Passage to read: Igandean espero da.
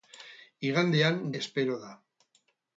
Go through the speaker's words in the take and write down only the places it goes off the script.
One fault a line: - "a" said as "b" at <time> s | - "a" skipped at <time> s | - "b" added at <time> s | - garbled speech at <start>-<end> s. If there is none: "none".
none